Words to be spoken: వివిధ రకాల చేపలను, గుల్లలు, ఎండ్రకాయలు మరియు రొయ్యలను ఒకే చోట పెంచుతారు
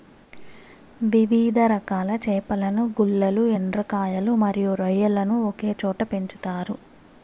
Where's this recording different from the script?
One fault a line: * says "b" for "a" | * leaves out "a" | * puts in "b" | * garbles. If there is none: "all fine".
all fine